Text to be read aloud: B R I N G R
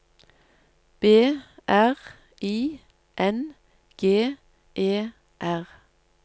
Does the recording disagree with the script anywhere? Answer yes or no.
yes